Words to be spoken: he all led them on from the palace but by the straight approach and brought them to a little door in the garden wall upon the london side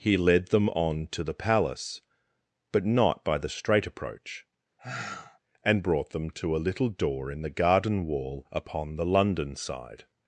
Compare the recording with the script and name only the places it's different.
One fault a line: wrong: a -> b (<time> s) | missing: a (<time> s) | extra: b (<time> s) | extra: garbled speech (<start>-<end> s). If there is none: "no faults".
missing: all (0.2 s)
wrong: from -> to (1.1 s)
extra: not (2.8 s)